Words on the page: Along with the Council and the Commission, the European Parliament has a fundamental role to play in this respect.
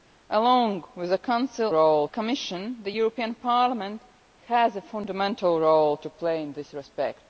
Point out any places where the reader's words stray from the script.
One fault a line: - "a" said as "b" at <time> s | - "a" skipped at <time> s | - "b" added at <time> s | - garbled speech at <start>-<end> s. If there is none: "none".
- "and" said as "role" at 1.7 s